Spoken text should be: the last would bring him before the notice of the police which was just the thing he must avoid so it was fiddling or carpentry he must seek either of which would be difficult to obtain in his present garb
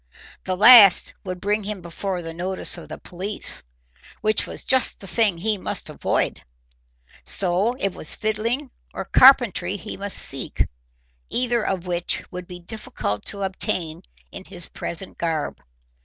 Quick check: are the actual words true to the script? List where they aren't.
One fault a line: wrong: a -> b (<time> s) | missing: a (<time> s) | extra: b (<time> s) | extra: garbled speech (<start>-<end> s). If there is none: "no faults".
no faults